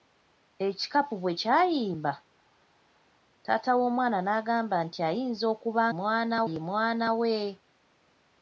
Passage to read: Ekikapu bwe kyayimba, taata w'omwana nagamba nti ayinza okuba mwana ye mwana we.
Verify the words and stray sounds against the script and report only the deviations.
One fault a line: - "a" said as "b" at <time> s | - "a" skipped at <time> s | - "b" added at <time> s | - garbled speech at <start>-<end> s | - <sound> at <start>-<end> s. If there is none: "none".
none